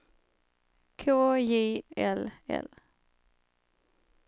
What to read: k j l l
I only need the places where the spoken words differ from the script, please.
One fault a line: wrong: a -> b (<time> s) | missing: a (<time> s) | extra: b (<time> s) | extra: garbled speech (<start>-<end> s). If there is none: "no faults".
no faults